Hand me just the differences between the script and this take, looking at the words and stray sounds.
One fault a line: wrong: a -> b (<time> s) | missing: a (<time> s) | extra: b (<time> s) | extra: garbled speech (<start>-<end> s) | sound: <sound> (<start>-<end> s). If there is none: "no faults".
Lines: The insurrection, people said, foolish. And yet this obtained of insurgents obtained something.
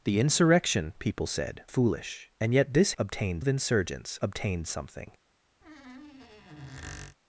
sound: squeak (5.6-7.2 s)